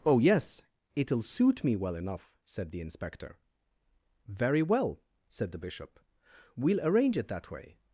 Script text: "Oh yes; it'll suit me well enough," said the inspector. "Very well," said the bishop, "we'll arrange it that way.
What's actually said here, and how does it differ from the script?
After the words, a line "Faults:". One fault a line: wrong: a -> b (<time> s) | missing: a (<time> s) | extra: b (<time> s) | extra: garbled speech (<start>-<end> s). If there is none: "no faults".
"Oh yes; it'll suit me well enough," said the inspector. "Very well," said the bishop, "we'll arrange it that way.
Faults:
no faults